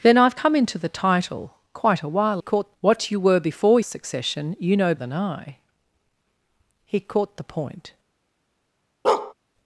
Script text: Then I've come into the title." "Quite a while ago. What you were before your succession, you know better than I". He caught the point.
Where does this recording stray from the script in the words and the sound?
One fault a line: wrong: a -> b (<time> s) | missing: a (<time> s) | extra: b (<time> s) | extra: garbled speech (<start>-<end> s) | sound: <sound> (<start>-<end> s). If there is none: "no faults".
wrong: ago -> caught (2.4 s)
missing: your (3.8 s)
missing: better (4.9 s)
sound: bark (9.0-9.3 s)